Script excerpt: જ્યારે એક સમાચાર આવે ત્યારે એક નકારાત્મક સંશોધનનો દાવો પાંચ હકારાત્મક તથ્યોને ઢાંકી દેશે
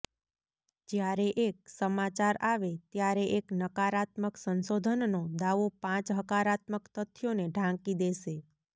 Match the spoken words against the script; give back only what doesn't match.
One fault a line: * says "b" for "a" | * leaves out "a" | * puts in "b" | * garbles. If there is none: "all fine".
all fine